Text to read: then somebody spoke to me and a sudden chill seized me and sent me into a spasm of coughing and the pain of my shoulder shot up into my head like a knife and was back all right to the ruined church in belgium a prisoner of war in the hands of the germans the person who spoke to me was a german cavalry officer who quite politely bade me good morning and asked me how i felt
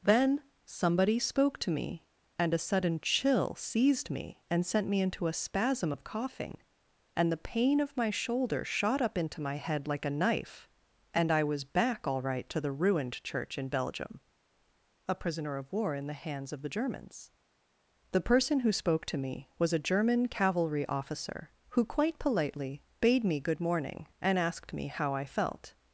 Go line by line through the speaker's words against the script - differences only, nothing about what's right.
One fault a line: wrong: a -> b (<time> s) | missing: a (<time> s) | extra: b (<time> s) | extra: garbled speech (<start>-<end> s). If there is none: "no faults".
extra: i (11.3 s)